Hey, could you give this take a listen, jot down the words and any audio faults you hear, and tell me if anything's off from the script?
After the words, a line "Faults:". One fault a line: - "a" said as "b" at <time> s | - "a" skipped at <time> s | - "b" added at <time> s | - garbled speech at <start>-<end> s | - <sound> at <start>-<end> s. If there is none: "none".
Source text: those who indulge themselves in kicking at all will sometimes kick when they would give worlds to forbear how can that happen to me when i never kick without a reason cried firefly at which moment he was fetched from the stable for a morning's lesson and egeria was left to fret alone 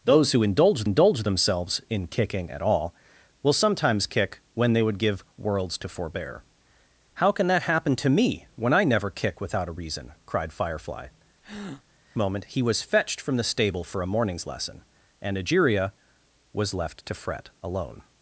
those who indulge indulge themselves in kicking at all will sometimes kick when they would give worlds to forbear how can that happen to me when i never kick without a reason cried firefly moment he was fetched from the stable for a morning's lesson and egeria was left to fret alone
Faults:
- "indulge" added at 0.8 s
- "at which" skipped at 11.1 s
- breath at 11.4-11.8 s